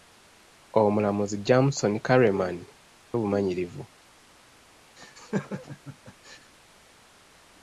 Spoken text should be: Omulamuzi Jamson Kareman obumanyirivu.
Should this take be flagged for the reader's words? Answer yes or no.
no